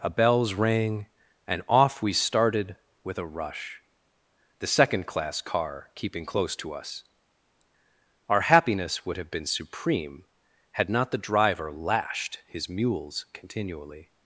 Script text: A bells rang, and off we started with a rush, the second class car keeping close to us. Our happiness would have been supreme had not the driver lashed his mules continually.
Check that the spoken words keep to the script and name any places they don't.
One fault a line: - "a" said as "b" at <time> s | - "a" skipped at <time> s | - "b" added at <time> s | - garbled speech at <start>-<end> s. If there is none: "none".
none